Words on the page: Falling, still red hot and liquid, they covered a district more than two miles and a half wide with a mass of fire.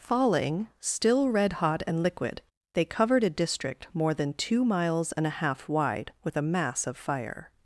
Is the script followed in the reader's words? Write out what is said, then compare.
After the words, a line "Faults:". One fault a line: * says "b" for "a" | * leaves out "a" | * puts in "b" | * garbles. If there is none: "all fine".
Falling, still red hot and liquid, they covered a district more than two miles and a half wide with a mass of fire.
Faults:
all fine